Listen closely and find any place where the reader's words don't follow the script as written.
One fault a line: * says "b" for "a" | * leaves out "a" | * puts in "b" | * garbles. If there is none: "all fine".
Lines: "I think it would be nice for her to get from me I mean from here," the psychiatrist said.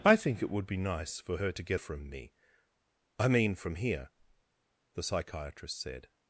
all fine